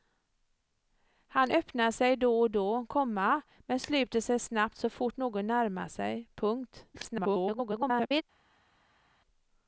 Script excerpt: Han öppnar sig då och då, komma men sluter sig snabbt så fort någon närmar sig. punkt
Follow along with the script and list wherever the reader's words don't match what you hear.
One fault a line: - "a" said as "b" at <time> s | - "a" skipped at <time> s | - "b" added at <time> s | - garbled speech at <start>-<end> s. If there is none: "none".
- garbled speech at 6.9-8.2 s